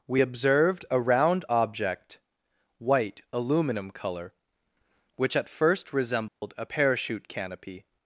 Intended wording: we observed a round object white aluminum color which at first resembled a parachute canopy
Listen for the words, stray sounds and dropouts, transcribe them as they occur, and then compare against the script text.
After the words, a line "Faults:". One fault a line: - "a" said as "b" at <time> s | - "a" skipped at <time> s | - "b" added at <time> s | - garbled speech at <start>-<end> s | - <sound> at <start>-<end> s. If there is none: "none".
we observed a round object white aluminum color which at first resembled a parachute canopy
Faults:
- dropout at 6.3-6.4 s